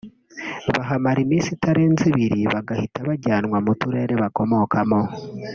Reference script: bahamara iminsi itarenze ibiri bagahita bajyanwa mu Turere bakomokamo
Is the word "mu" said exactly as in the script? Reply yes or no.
yes